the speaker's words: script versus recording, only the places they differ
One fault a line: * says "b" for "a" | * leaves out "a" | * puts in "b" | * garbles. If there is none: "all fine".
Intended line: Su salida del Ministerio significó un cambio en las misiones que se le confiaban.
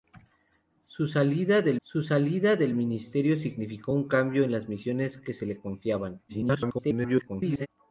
* puts in "su salida del"
* garbles